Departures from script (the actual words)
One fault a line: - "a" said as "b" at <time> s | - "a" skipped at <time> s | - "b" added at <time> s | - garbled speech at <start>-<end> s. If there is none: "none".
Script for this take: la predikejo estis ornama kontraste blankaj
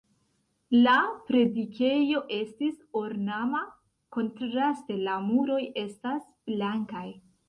- "la muroj estas" added at 5.1 s